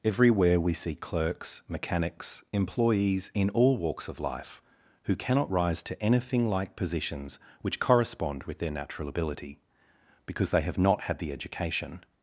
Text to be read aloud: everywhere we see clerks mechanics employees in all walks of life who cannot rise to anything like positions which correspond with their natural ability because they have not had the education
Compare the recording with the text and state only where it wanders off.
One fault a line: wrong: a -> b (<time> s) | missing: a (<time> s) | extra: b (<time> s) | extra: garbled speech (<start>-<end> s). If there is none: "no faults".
no faults